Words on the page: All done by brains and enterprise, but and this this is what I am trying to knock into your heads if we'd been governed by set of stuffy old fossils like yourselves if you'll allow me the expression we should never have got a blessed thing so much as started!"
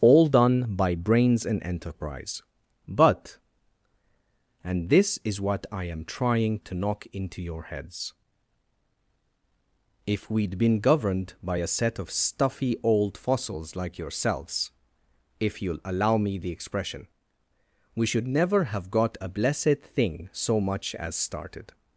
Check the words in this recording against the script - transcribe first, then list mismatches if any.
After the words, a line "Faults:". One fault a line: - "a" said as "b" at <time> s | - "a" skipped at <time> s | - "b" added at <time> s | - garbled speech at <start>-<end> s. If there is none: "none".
All done by brains and enterprise, but and this is what I am trying to knock into your heads if we'd been governed by a set of stuffy old fossils like yourselves if you'll allow me the expression we should never have got a blessed thing so much as started!"
Faults:
- "this" skipped at 5.2 s
- "a" added at 11.6 s